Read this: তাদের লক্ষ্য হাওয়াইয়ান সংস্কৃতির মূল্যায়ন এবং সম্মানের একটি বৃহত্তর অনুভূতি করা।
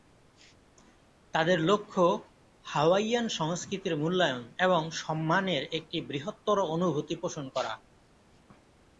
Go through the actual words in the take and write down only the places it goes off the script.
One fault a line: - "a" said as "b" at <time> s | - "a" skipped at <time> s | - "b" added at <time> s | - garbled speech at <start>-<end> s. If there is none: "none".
- "পোষণ" added at 7.2 s